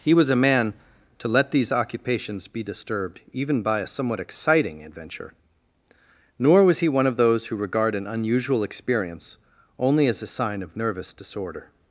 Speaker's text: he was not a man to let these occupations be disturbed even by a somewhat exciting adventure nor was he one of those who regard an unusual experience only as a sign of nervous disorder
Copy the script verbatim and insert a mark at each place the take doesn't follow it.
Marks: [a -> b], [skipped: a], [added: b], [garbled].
he was [skipped: not] a man to let these occupations be disturbed even by a somewhat exciting adventure nor was he one of those who regard an unusual experience only as a sign of nervous disorder